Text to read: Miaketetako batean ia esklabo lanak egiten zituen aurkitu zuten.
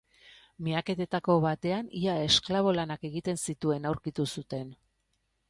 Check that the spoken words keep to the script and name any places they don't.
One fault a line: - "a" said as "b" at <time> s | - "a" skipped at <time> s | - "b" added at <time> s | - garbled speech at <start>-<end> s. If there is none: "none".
none